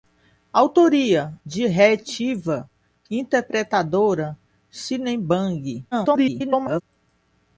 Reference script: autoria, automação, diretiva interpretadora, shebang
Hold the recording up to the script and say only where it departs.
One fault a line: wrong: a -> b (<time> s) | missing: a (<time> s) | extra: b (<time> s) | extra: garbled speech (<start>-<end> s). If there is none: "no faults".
missing: automação (1.3 s)
extra: garbled speech (5.9-6.8 s)